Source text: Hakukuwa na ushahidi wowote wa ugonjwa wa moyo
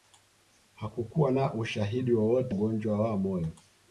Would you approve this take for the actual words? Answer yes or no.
no